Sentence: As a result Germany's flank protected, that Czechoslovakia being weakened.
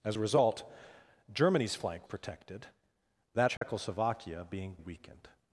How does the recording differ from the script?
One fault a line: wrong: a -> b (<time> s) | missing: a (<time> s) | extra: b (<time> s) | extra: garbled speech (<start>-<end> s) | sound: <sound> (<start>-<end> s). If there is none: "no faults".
sound: dropout (3.6-3.6 s)